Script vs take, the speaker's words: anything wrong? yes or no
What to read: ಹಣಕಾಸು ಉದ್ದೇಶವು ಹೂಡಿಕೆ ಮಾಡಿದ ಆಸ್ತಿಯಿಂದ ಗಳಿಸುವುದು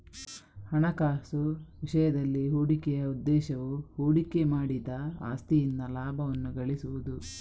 yes